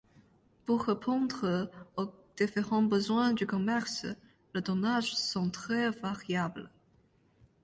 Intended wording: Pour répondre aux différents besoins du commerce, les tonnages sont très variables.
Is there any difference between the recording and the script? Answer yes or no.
no